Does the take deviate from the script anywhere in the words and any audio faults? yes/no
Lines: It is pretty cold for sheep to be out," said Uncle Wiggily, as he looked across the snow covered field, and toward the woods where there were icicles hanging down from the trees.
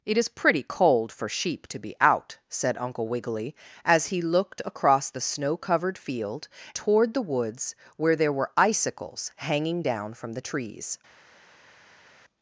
yes